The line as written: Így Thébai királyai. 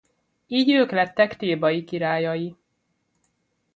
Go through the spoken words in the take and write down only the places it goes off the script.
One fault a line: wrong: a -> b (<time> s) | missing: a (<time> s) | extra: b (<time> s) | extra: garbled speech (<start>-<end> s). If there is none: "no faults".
extra: ők lettek (0.7 s)